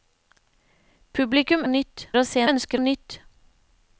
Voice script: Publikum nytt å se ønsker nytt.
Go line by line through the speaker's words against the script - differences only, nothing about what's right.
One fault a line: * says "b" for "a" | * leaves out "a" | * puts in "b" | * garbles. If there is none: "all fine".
all fine